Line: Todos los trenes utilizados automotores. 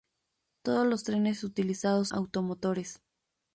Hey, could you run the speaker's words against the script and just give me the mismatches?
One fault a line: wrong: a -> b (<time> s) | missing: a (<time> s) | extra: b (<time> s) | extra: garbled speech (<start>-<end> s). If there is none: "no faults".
no faults